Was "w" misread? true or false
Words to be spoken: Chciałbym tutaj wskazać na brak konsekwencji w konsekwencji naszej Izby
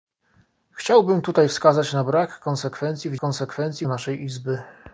false